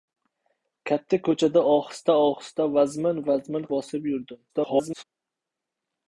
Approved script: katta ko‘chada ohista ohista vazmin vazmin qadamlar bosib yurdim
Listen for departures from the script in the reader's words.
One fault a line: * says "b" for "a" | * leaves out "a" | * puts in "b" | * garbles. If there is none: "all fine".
* leaves out "qadamlar"
* garbles